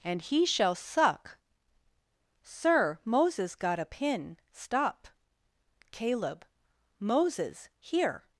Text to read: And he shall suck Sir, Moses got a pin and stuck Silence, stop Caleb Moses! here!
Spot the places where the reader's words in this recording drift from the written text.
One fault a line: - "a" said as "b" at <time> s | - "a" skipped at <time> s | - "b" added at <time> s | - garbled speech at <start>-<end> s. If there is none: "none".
- "and stuck Silence" skipped at 4.4 s